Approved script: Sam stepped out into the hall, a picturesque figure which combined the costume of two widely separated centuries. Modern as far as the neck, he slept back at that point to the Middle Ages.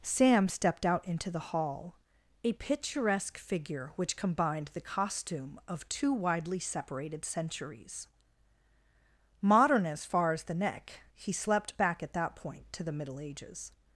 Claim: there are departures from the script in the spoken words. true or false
false